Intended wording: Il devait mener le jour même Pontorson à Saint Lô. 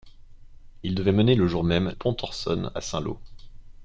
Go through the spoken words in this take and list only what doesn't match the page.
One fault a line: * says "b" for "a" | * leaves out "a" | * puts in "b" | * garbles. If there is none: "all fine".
all fine